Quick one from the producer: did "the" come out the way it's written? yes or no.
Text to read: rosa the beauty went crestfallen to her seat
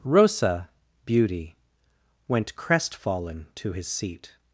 no